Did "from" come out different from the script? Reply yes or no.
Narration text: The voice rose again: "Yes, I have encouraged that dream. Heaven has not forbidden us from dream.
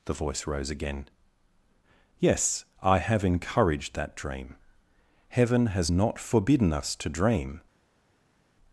yes